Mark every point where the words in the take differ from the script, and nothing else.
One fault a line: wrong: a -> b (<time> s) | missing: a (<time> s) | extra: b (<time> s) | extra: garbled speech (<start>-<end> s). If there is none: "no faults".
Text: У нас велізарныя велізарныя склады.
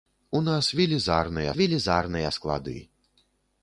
no faults